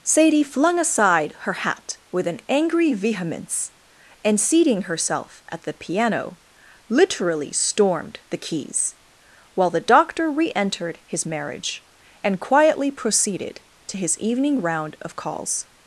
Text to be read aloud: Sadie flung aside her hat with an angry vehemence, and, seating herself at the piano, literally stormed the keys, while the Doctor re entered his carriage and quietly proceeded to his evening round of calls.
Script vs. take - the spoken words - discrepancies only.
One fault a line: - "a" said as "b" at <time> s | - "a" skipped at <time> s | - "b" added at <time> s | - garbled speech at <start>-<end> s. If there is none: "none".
- "carriage" said as "marriage" at 11.2 s